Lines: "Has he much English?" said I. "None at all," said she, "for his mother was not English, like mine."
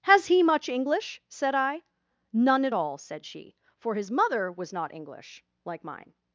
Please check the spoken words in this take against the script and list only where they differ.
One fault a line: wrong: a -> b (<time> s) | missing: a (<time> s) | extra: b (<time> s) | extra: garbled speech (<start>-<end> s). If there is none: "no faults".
no faults